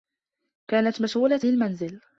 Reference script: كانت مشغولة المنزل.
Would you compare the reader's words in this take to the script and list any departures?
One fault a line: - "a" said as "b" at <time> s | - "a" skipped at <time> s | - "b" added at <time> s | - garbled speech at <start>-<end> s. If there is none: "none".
none